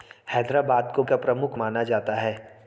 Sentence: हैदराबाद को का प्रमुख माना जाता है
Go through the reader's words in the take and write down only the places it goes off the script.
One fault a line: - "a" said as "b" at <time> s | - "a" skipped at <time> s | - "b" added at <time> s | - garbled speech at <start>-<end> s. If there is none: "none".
none